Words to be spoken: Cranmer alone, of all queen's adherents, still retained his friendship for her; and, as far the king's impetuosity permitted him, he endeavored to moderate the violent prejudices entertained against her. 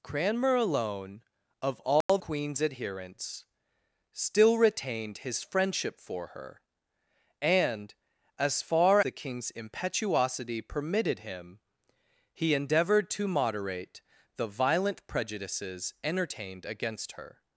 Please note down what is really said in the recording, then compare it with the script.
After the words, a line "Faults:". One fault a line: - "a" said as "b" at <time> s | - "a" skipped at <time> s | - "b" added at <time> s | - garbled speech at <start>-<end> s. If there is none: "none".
Cranmer alone, of all queen's adherents, still retained his friendship for her; and, as far the king's impetuosity permitted him, he endeavored to moderate the violent prejudices entertained against her.
Faults:
none